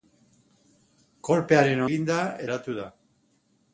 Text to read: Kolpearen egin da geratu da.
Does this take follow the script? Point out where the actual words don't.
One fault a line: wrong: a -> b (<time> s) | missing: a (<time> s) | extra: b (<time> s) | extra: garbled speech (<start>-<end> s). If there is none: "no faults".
no faults